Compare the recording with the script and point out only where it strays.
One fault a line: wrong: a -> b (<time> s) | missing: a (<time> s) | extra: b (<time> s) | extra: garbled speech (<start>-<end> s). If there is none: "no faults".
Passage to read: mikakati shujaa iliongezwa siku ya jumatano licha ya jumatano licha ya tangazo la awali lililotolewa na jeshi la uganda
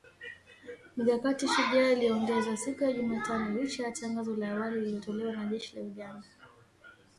missing: jumatano licha ya (3.9 s)